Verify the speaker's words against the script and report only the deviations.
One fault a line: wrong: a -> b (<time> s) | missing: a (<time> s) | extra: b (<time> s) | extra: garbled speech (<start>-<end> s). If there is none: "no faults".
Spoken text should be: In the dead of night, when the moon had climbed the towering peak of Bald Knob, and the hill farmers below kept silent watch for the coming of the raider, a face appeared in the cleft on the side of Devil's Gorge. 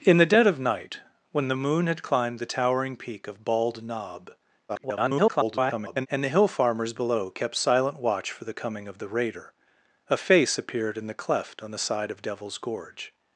extra: garbled speech (4.7-6.1 s)